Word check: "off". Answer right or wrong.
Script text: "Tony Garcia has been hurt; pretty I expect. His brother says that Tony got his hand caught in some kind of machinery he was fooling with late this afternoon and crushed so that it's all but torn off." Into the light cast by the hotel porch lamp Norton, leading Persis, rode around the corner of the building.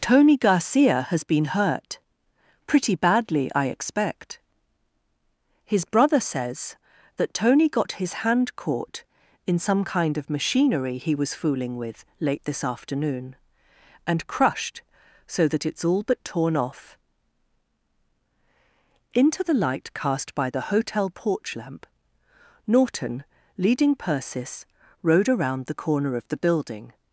right